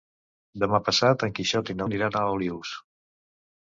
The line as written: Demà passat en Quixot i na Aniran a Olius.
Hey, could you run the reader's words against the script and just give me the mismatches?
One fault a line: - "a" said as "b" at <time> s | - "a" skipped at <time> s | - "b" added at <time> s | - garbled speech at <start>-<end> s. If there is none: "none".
none